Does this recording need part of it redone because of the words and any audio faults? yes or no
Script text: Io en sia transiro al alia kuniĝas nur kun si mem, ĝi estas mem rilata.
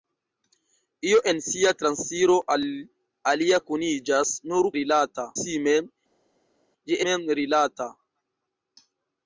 yes